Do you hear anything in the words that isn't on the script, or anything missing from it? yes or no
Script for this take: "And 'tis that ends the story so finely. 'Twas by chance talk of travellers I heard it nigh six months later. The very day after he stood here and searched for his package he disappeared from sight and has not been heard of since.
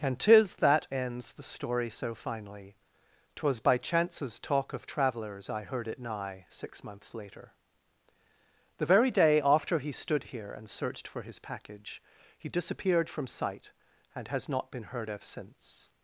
yes